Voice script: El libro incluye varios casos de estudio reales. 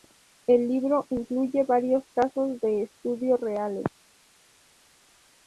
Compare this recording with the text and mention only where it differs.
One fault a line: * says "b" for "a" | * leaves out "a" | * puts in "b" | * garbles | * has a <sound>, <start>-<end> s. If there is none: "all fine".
all fine